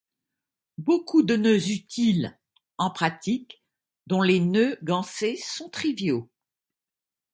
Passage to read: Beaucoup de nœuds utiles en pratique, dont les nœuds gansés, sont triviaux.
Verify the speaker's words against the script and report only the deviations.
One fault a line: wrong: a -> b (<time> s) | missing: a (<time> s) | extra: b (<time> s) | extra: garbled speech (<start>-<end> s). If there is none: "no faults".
no faults